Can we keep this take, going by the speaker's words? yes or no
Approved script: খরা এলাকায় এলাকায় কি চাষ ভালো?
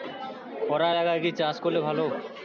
no